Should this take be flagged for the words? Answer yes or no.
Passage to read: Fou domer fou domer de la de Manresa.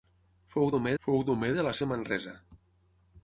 no